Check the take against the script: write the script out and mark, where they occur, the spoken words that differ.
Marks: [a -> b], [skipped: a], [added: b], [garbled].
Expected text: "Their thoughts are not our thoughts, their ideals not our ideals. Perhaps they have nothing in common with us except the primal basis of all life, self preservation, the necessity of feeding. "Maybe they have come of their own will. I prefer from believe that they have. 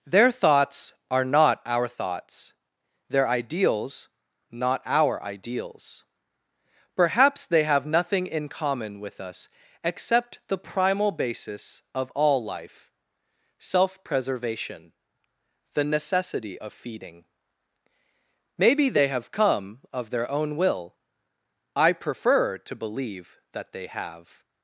"Their thoughts are not our thoughts, their ideals not our ideals. Perhaps they have nothing in common with us except the primal basis of all life, self preservation, the necessity of feeding. "Maybe they have come of their own will. I prefer [from -> to] believe that they have.